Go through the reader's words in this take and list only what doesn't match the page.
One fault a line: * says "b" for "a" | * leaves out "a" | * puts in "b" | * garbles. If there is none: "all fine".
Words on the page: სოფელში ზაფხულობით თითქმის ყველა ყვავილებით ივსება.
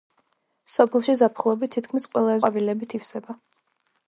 all fine